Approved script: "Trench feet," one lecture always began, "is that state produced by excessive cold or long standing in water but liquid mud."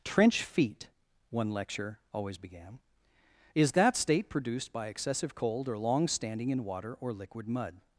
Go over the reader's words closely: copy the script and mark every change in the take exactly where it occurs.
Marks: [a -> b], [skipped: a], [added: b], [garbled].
"Trench feet," one lecture always began, "is that state produced by excessive cold or long standing in water [but -> or] liquid mud."